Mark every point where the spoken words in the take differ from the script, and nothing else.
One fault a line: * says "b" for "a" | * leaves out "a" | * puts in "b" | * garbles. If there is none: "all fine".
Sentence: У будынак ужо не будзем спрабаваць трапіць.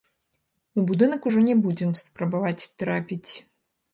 all fine